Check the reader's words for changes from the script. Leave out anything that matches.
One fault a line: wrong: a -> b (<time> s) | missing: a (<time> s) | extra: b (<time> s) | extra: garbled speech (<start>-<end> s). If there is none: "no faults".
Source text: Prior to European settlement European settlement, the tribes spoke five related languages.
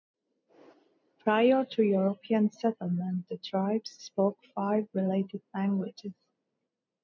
missing: European settlement (3.3 s)